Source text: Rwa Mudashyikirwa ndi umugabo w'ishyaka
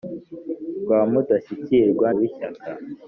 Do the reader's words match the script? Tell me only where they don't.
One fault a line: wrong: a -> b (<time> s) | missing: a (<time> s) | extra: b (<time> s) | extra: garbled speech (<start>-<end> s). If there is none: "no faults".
missing: ndi umugabo (2.1 s)